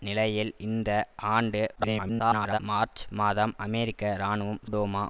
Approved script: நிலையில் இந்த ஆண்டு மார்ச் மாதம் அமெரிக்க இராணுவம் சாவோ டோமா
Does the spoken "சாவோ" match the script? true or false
false